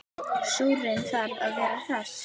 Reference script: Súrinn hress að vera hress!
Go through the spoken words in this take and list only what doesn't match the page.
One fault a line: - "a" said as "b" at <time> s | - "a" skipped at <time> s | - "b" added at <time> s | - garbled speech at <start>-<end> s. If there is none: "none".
- "hress" said as "þarf" at 1.1 s